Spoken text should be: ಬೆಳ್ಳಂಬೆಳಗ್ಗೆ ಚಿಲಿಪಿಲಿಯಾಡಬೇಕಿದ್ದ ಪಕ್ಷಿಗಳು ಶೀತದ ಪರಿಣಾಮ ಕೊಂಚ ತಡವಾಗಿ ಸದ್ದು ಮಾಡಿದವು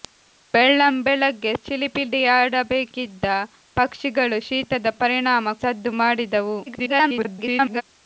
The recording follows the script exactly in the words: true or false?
false